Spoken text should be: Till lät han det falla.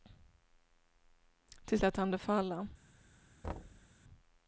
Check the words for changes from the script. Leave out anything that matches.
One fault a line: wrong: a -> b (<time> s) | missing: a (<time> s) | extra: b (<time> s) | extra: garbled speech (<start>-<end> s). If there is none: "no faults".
no faults